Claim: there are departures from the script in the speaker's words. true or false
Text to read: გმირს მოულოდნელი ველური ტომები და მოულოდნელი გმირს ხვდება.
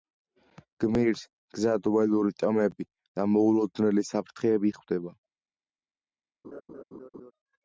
true